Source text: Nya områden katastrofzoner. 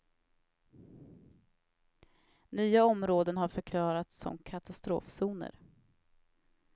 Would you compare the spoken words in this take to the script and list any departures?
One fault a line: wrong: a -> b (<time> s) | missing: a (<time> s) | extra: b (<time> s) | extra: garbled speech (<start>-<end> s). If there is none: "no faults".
extra: har förklarats som (3.4 s)